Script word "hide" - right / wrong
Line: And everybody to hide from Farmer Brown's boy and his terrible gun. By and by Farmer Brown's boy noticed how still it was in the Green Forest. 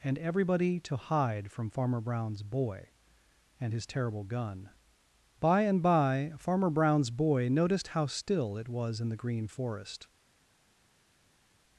right